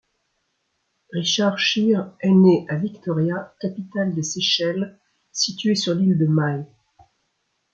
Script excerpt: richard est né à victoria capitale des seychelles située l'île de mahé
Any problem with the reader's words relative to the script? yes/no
yes